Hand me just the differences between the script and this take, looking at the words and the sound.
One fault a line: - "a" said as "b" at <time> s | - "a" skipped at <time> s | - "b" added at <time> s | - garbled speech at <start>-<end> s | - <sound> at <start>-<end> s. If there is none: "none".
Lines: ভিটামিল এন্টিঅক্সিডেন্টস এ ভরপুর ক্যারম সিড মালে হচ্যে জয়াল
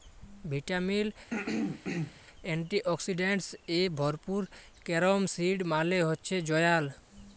- throat clearing at 1.3-2.2 s